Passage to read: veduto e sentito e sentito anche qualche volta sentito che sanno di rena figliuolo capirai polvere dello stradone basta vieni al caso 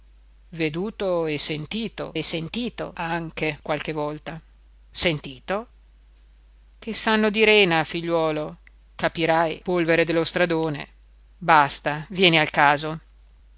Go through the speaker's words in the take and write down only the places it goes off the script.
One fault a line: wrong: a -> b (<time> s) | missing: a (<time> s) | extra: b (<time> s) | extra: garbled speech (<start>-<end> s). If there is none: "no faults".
no faults